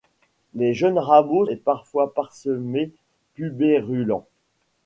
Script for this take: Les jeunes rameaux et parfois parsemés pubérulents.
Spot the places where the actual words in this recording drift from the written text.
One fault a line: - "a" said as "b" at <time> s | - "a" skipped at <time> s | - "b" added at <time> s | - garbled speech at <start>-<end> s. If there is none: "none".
none